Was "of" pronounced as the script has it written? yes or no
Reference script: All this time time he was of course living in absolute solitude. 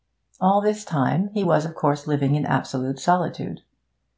yes